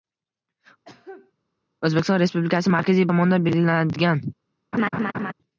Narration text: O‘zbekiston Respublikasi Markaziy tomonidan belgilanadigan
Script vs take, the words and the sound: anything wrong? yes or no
yes